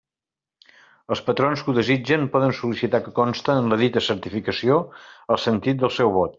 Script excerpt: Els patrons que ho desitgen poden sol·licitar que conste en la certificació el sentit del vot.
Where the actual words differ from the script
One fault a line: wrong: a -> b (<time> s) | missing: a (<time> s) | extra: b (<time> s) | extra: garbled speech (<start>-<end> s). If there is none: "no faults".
extra: dita (3.9 s)
extra: seu (6.0 s)